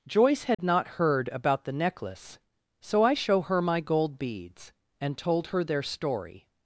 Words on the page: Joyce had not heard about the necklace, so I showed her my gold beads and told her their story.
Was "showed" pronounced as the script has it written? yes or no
no